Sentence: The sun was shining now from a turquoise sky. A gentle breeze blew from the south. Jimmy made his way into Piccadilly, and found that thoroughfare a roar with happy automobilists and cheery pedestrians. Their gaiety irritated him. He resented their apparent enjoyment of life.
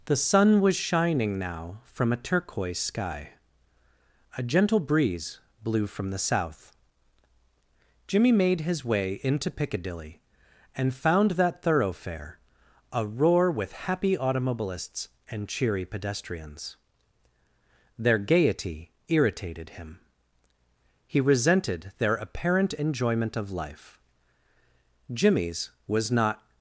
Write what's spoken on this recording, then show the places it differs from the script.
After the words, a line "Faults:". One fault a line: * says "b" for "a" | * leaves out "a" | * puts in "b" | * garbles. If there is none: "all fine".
The sun was shining now from a turquoise sky. A gentle breeze blew from the south. Jimmy made his way into Piccadilly, and found that thoroughfare a roar with happy automobilists and cheery pedestrians. Their gaiety irritated him. He resented their apparent enjoyment of life. Jimmy's was not
Faults:
* puts in "Jimmy's was not"